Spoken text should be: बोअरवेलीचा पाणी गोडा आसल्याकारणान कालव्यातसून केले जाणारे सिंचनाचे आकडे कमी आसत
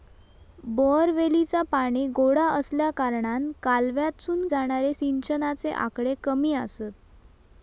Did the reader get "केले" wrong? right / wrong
wrong